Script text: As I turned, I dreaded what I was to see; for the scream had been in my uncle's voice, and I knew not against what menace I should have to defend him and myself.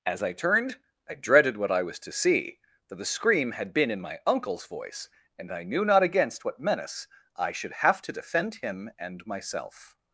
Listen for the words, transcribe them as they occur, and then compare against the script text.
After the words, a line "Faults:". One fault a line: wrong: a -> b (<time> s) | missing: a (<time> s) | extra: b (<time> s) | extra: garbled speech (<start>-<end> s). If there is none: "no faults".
As I turned, I dreaded what I was to see; for the scream had been in my uncle's voice, and I knew not against what menace I should have to defend him and myself.
Faults:
no faults